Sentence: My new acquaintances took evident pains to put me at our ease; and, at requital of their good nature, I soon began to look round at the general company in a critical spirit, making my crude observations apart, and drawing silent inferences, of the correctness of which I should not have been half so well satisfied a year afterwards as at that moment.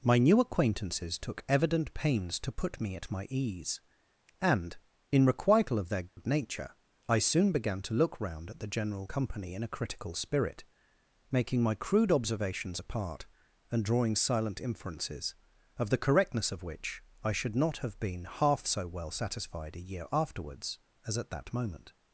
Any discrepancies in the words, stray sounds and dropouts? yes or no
yes